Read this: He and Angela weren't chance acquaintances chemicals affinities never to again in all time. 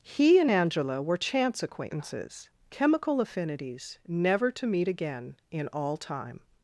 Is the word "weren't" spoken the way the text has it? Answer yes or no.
no